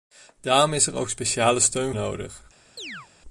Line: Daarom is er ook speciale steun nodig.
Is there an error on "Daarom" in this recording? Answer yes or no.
no